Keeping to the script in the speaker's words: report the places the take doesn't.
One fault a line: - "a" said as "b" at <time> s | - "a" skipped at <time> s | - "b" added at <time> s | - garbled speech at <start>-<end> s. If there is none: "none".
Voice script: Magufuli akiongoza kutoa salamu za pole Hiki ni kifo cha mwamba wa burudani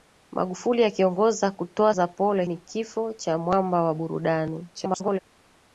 - "salamu" skipped at 1.9 s
- "Hiki" skipped at 2.4 s
- garbled speech at 4.7-5.2 s